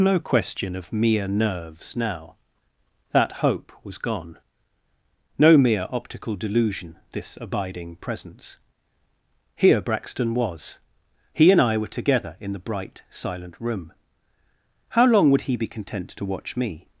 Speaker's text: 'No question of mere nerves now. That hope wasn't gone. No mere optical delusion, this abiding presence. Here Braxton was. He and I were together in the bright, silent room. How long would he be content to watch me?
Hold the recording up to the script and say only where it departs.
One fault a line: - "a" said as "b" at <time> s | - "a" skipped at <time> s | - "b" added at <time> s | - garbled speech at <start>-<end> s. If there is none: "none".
- "wasn't" said as "was" at 3.8 s